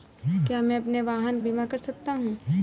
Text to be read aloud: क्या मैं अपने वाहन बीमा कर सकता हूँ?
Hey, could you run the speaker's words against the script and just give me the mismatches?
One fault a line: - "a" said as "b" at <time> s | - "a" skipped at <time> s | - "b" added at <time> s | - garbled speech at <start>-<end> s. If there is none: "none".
none